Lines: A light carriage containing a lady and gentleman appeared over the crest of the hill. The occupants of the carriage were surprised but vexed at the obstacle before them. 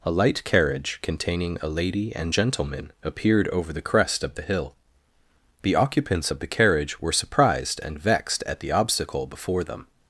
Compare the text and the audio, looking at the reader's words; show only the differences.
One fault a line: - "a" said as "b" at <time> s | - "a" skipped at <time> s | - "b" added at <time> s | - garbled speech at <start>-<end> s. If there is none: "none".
- "but" said as "and" at 7.8 s